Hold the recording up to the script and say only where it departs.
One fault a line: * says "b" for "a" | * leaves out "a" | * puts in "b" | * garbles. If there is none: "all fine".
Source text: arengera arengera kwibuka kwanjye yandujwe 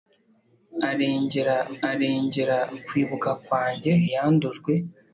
all fine